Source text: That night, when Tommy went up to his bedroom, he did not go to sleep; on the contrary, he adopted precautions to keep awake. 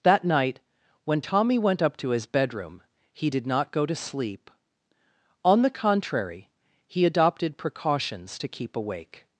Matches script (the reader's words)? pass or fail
pass